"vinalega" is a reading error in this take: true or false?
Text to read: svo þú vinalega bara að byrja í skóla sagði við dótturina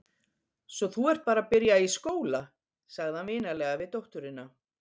true